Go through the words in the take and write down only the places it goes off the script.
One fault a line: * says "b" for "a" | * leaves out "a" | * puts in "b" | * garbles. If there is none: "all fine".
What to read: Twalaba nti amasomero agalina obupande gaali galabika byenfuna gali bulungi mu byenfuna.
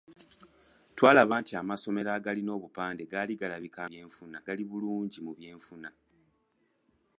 all fine